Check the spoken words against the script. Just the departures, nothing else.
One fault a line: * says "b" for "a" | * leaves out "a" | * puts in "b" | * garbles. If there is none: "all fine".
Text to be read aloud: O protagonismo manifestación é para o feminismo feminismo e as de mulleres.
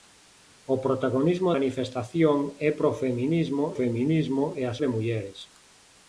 all fine